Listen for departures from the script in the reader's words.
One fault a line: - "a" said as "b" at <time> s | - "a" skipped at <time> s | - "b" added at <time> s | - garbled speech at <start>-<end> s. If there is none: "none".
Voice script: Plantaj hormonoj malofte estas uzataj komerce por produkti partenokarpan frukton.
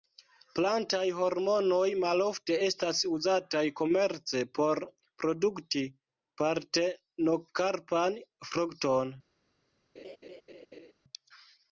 none